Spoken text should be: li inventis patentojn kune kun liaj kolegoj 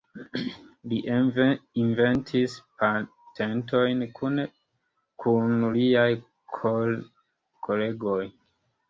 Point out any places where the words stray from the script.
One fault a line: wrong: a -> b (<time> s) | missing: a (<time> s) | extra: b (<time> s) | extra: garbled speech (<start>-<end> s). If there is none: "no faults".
no faults